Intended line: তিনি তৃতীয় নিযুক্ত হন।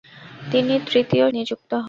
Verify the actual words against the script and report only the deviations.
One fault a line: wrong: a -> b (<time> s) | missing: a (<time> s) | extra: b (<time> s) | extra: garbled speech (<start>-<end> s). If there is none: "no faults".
no faults